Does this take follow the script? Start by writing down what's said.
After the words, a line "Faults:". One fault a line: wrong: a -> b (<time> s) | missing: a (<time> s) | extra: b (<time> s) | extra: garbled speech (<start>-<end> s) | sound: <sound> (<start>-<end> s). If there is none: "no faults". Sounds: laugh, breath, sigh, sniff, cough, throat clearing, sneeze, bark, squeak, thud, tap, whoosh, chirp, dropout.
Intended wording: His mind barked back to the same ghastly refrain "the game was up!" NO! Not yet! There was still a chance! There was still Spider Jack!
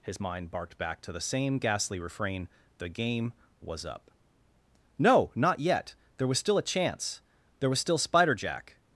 His mind barked back to the same ghastly refrain "the game was up!" NO! Not yet! There was still a chance! There was still Spider Jack!
Faults:
no faults